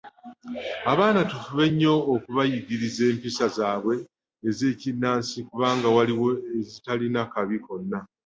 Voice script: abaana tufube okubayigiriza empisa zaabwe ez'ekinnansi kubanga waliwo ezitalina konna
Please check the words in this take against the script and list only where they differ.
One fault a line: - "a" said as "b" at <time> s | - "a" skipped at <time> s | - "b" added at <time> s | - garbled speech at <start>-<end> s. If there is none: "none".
- "nnyo" added at 1.7 s
- "kabi" added at 7.3 s